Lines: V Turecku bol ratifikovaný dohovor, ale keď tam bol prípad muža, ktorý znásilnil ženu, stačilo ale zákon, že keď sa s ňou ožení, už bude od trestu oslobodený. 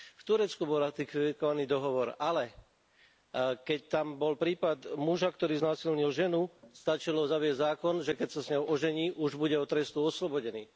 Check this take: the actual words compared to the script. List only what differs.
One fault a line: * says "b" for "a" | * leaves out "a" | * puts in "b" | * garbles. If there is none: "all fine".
* says "zaviesť" for "ale"